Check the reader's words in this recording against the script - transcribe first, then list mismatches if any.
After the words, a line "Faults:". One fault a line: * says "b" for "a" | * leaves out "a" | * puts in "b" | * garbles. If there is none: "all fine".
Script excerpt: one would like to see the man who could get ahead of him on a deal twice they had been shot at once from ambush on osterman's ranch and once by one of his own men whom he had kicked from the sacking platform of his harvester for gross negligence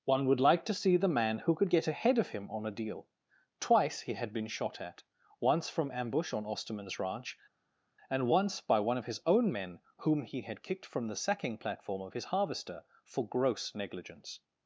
one would like to see the man who could get ahead of him on a deal twice he had been shot at once from ambush on osterman's ranch and once by one of his own men whom he had kicked from the sacking platform of his harvester for gross negligence
Faults:
* says "he" for "they"